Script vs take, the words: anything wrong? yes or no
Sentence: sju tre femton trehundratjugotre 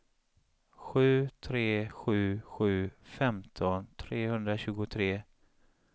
yes